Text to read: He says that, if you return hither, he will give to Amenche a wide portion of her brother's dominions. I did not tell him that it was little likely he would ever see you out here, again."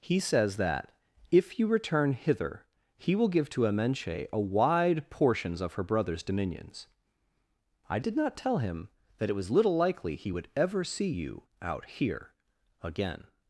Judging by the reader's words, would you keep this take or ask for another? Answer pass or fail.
fail